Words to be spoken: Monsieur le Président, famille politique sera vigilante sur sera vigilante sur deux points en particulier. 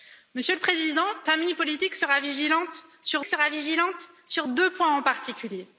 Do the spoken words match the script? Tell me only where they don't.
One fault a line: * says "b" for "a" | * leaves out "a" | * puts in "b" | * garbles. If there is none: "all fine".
all fine